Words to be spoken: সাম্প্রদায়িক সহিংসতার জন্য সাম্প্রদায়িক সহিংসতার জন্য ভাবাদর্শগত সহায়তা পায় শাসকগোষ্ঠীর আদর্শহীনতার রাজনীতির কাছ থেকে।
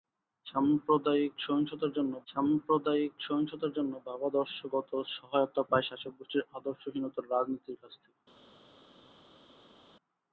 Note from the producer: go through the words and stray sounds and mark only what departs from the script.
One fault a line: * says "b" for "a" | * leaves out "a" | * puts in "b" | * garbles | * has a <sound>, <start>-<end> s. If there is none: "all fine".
all fine